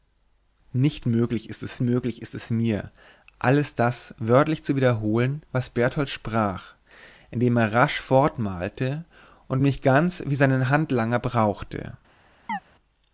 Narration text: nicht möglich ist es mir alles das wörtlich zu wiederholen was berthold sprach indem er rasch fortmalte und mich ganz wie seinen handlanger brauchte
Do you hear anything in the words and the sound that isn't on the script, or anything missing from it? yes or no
yes